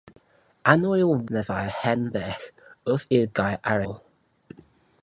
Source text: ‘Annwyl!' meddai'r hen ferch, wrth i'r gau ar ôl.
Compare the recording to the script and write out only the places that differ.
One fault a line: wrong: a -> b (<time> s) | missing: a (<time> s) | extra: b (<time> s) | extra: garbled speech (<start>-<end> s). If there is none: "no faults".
no faults